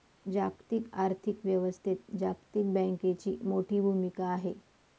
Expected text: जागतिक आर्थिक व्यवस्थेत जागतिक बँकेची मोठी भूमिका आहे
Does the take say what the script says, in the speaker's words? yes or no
yes